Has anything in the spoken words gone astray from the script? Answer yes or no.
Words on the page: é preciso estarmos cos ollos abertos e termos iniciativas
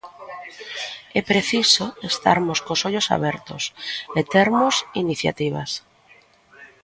no